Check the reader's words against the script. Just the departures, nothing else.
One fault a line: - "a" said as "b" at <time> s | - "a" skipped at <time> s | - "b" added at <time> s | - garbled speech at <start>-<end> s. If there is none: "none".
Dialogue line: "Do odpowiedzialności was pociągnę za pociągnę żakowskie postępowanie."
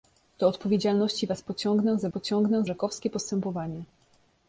none